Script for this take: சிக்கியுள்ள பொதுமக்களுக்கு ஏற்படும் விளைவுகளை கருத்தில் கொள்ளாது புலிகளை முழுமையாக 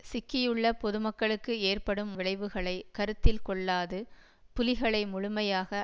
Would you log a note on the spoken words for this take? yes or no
no